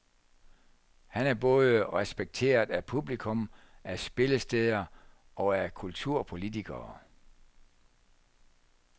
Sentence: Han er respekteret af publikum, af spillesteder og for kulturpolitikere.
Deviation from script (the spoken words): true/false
true